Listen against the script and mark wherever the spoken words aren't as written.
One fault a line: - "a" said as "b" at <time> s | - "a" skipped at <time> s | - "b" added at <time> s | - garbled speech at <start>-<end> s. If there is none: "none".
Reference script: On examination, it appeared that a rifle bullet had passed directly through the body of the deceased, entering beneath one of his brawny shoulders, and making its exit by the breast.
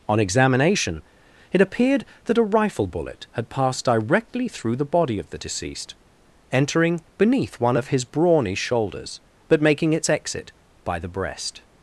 - "and" said as "but" at 9.5 s